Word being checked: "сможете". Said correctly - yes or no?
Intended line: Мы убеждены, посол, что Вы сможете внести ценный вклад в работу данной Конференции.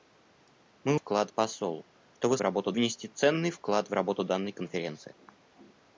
no